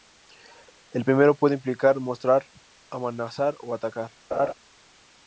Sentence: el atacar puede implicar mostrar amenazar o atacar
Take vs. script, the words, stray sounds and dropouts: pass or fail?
fail